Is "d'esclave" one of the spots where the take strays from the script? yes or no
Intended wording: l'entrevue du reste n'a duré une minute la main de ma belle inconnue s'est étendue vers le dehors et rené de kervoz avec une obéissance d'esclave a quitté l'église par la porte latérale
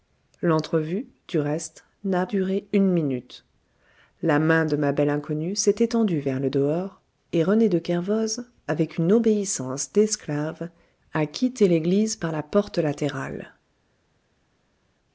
no